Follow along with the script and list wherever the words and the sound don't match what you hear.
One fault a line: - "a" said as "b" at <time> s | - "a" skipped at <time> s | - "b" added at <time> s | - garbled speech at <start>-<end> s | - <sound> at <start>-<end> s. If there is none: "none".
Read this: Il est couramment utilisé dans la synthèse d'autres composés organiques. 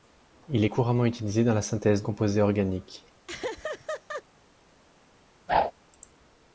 - "d'autres" skipped at 2.0 s
- laugh at 3.3-4.2 s
- whoosh at 5.5-5.7 s